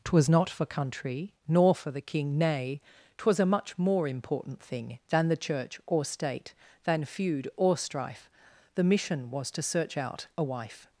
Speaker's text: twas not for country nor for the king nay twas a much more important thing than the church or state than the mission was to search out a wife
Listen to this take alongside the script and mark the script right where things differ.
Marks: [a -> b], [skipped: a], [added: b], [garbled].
twas not for country nor for the king nay twas a much more important thing than the church or state than [added: feud or strife] the mission was to search out a wife